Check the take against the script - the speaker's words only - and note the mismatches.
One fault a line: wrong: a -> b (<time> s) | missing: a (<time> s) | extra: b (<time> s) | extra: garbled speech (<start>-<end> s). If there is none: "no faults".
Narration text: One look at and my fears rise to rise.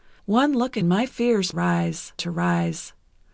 no faults